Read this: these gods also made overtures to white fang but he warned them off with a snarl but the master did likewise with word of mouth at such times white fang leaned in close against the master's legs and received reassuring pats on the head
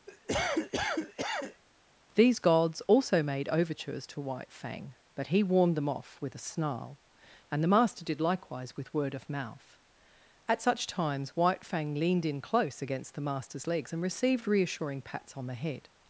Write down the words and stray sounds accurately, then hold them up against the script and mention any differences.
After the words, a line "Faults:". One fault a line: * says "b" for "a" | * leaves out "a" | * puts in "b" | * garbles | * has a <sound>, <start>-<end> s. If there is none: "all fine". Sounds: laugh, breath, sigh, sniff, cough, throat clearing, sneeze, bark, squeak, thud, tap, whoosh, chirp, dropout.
these gods also made overtures to white fang but he warned them off with a snarl and the master did likewise with word of mouth at such times white fang leaned in close against the master's legs and received reassuring pats on the head
Faults:
* has a cough, 0.1-1.6 s
* says "and" for "but"